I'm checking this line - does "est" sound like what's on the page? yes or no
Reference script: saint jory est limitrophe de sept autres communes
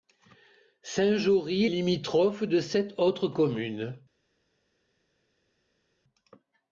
no